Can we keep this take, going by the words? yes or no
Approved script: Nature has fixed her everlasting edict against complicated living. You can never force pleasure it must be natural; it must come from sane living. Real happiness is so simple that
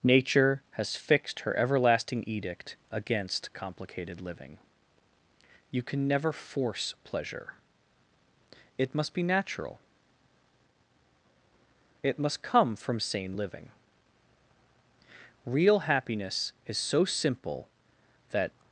yes